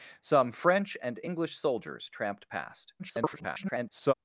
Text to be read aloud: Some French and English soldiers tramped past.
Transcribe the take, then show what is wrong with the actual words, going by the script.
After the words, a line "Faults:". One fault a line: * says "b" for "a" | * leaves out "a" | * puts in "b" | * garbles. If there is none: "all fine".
Some French and English soldiers tramped past. [garbled]
Faults:
* garbles